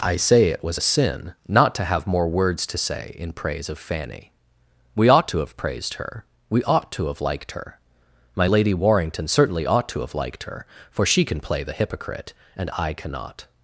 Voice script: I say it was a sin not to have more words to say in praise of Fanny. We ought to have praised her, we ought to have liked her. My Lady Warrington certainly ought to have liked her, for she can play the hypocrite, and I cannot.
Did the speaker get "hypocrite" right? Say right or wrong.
right